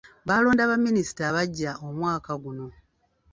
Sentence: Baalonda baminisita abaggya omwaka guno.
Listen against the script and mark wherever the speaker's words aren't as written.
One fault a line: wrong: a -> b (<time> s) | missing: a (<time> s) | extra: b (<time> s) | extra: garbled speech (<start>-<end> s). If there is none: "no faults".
no faults